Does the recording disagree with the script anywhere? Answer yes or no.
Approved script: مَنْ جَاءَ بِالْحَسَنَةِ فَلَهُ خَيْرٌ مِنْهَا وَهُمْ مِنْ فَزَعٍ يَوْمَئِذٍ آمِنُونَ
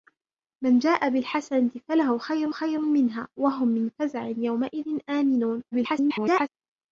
yes